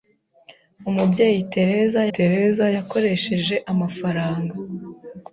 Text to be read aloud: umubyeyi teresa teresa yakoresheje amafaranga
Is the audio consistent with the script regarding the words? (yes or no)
yes